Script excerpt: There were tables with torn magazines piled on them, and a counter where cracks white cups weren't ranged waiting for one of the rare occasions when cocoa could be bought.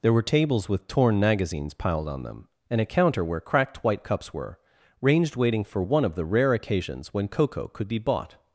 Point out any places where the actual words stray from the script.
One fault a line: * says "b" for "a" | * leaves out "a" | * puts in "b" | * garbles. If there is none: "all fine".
* says "cracked" for "cracks"
* says "were" for "weren't"